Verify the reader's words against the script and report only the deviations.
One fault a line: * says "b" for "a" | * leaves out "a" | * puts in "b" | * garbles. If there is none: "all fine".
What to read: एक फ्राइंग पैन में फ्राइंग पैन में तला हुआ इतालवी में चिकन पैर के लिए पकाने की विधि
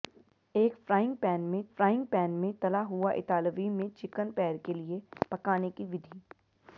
all fine